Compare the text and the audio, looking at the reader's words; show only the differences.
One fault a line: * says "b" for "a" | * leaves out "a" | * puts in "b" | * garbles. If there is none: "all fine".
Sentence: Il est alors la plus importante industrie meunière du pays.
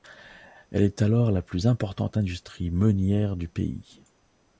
* says "Elle" for "Il"